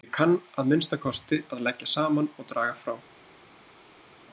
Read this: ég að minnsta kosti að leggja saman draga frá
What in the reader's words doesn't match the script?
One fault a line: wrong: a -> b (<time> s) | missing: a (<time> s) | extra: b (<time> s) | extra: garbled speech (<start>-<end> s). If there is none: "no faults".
extra: kann (0.2 s)
extra: og (2.4 s)